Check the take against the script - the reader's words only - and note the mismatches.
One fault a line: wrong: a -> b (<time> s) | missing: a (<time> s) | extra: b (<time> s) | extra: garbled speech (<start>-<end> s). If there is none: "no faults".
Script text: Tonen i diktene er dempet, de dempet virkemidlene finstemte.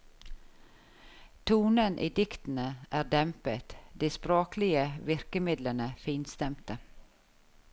wrong: dempet -> språklige (4.1 s)